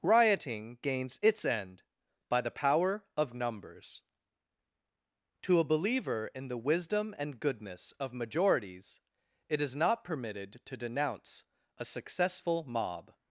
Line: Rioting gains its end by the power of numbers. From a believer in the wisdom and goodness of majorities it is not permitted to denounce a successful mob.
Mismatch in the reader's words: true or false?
true